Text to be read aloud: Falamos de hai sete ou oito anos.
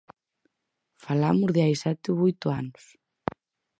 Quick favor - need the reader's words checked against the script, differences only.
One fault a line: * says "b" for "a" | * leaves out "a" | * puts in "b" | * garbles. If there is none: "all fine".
all fine